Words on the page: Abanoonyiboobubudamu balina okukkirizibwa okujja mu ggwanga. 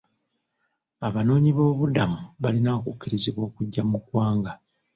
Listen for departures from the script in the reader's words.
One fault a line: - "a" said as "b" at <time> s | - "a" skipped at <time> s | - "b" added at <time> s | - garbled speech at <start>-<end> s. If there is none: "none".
none